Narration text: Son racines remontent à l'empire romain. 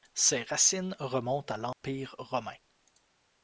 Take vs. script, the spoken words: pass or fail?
fail